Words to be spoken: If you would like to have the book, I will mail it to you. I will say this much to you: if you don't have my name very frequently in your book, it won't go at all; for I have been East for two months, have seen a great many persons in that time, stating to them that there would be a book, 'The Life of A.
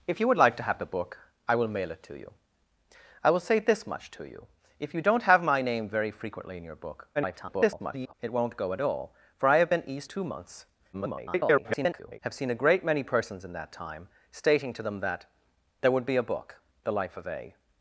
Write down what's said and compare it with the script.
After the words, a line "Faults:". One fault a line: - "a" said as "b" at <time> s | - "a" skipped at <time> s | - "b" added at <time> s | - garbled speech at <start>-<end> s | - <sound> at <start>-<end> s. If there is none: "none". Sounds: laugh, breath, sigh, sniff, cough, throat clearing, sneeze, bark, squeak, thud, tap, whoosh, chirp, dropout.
If you would like to have the book, I will mail it to you. I will say this much to you: if you don't have my name very frequently in your book, [garbled] it won't go at all; for I have been East two months, [garbled] have seen a great many persons in that time, stating to them that there would be a book, 'The Life of A.
Faults:
- garbled speech at 7.1-8.1 s
- "for" skipped at 10.1 s
- garbled speech at 10.9-12.2 s